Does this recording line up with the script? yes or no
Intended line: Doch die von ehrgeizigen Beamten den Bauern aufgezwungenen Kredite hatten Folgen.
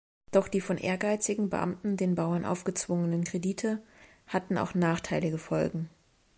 no